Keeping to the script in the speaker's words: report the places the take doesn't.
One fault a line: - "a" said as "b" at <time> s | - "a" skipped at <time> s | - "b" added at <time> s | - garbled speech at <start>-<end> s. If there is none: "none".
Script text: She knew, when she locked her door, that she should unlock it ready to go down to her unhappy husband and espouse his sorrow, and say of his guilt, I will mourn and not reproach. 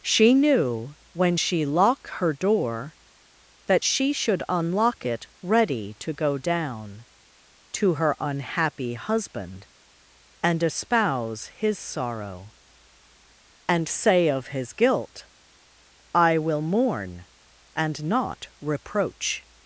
- "locked" said as "lock" at 1.6 s